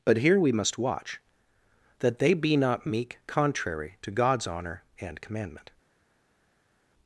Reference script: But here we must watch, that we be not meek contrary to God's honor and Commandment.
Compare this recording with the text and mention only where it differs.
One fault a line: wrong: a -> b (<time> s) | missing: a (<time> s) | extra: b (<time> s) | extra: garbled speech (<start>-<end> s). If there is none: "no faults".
wrong: we -> they (2.2 s)